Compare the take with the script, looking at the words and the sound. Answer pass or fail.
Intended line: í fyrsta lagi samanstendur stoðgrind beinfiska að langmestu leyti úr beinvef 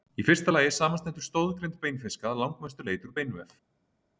pass